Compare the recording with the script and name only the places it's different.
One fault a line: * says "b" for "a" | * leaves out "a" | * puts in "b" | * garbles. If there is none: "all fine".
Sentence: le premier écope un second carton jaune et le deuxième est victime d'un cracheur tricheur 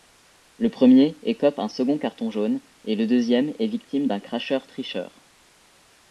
all fine